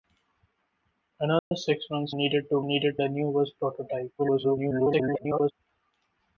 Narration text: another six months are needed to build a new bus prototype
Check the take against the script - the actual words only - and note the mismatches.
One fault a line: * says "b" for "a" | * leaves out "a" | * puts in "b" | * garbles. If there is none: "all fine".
* leaves out "are"
* says "needed" for "build"
* garbles